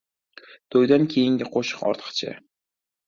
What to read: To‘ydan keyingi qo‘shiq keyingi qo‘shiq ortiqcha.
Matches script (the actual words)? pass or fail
fail